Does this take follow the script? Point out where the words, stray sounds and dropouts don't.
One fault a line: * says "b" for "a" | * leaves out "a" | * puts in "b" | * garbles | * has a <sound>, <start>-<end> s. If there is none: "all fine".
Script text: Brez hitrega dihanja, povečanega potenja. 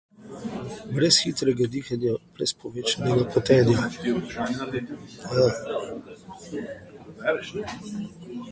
* puts in "brez"